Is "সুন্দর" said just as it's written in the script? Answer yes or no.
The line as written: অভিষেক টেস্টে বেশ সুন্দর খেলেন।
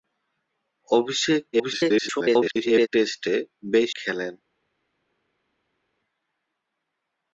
no